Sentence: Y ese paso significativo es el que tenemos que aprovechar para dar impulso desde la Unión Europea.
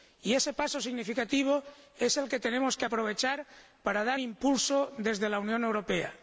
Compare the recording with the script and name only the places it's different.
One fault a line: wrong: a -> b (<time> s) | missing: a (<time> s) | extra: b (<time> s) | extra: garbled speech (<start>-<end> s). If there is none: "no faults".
no faults